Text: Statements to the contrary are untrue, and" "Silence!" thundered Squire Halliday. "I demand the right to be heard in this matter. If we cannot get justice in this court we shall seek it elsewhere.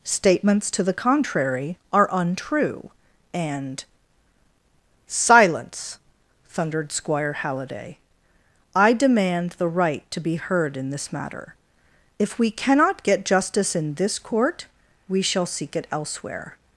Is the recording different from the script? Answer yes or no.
no